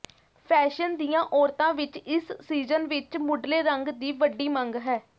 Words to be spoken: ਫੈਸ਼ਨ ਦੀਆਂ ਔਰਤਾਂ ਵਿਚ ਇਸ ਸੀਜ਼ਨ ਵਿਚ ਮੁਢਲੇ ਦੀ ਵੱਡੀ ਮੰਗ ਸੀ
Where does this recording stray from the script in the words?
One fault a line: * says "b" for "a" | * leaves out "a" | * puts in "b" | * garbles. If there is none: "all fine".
* puts in "ਰੰਗ"
* says "ਹੈ" for "ਸੀ"